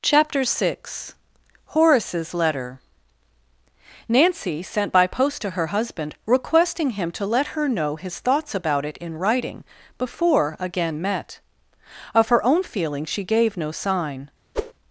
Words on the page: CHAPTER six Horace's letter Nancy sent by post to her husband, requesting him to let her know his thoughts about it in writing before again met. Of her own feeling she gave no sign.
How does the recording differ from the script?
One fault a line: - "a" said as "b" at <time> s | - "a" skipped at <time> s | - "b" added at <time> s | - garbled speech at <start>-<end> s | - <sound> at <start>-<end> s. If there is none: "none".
- whoosh at 14.5-14.7 s